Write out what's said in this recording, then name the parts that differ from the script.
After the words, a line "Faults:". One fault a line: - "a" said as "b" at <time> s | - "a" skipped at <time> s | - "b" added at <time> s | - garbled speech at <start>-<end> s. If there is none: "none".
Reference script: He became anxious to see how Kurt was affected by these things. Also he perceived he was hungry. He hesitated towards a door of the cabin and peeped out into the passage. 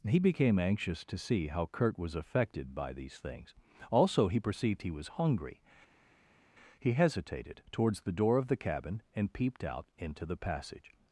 He became anxious to see how Kurt was affected by these things. Also he perceived he was hungry. He hesitated towards the door of the cabin and peeped out into the passage.
Faults:
- "a" said as "the" at 8.0 s